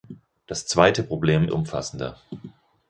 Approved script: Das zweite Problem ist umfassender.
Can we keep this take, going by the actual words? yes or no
no